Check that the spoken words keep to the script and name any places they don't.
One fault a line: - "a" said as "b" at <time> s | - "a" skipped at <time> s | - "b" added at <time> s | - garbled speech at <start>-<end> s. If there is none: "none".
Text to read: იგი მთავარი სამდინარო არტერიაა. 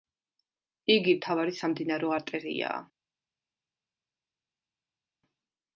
none